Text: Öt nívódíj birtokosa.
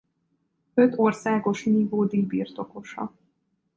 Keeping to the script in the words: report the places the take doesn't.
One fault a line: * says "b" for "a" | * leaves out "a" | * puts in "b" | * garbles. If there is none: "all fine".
* puts in "országos"